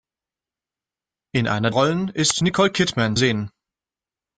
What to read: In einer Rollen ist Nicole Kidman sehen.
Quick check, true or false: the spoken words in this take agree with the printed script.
true